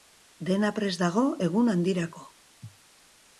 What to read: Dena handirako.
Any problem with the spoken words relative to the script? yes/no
yes